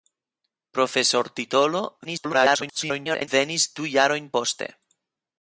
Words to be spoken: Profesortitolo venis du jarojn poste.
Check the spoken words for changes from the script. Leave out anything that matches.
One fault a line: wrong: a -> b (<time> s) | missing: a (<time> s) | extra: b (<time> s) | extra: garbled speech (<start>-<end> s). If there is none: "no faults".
extra: garbled speech (2.0-3.3 s)